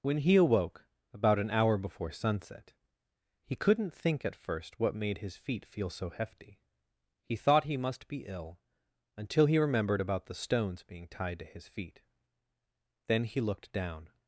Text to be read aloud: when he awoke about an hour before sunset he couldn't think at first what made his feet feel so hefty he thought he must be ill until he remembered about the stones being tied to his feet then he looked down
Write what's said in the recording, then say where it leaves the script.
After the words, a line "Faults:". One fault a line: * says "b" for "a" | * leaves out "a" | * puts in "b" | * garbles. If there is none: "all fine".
when he awoke about an hour before sunset he couldn't think at first what made his feet feel so hefty he thought he must be ill until he remembered about the stones being tied to his feet then he looked down
Faults:
all fine